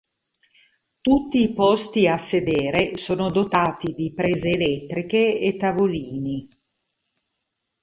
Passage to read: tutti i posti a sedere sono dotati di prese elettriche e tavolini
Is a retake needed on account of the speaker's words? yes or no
no